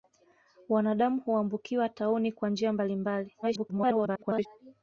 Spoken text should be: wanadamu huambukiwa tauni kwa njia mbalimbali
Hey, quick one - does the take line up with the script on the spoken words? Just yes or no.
no